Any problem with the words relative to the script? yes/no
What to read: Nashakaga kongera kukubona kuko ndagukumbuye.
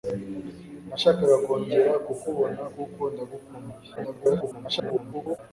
yes